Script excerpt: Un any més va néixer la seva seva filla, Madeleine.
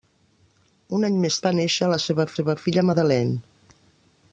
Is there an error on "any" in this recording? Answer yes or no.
no